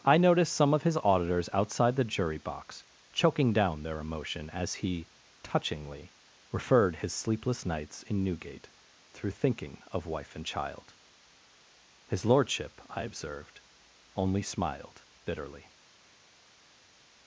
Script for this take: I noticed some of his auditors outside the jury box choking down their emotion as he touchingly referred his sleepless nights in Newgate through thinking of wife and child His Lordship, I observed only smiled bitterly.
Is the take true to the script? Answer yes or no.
yes